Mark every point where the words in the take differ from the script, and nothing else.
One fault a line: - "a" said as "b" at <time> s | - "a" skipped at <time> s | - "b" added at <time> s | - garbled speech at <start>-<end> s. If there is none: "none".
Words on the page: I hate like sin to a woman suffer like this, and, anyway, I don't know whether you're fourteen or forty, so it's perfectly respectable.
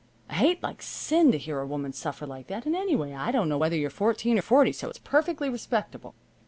- "hear" added at 1.4 s
- "this" said as "that" at 2.5 s